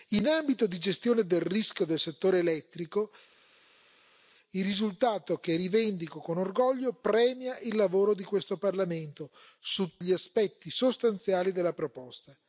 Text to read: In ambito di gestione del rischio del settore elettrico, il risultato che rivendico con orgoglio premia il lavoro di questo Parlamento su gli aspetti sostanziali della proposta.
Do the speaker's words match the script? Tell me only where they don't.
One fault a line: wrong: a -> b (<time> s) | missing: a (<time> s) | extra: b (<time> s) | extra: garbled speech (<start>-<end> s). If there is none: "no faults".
no faults